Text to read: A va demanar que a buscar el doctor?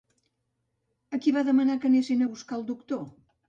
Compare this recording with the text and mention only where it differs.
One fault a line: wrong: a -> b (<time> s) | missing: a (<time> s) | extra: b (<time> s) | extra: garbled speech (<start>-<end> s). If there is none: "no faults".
extra: qui (1.2 s)
extra: anessin (1.9 s)